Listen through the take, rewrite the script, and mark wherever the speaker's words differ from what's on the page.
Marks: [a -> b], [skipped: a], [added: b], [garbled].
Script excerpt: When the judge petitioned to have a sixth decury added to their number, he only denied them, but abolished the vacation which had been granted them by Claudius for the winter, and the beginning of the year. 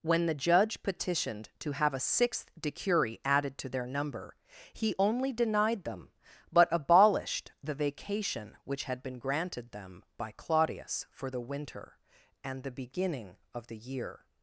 When the judge petitioned to have a sixth decury added to their number, he only denied them, but abolished the vacation which had been granted them by Claudius for the winter, and the beginning of the year.